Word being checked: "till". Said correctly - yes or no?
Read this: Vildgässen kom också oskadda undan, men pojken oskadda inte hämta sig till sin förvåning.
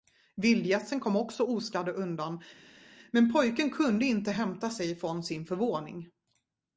no